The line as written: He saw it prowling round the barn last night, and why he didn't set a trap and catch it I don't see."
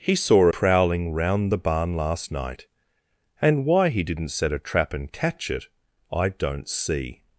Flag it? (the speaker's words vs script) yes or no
yes